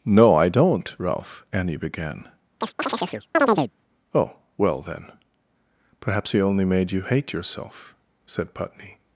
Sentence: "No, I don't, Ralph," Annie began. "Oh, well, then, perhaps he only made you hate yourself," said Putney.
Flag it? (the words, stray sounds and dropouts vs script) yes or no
yes